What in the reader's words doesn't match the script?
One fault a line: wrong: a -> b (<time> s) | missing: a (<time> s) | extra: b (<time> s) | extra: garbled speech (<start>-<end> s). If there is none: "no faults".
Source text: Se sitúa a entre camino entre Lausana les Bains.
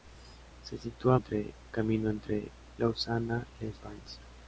no faults